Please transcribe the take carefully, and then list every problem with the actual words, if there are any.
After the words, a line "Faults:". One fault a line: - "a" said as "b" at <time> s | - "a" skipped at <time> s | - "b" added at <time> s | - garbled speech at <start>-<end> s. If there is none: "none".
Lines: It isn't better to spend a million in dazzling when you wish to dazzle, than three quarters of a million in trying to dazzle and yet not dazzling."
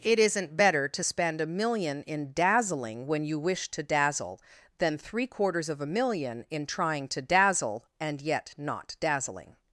It isn't better to spend a million in dazzling when you wish to dazzle, than three quarters of a million in trying to dazzle and yet not dazzling."
Faults:
none